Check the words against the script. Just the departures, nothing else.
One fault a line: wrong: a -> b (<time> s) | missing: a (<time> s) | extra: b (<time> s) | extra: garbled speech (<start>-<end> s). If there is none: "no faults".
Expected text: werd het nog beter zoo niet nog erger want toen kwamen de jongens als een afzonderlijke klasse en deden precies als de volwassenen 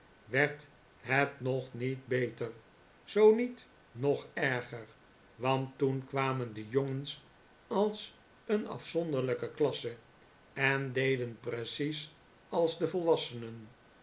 extra: niet (1.7 s)